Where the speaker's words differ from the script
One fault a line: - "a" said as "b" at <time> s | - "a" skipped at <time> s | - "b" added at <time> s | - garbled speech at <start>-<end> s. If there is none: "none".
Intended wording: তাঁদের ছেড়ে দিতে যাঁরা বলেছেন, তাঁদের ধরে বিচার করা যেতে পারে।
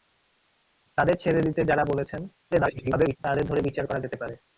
- garbled speech at 2.5-3.2 s